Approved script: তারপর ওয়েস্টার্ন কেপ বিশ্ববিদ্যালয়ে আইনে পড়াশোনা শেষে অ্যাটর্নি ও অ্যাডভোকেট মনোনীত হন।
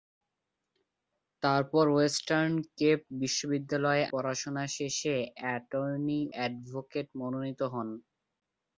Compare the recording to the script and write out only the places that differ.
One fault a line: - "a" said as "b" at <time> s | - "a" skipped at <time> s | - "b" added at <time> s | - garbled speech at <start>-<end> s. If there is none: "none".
- "আইনে" skipped at 4.0 s
- "ও" skipped at 6.2 s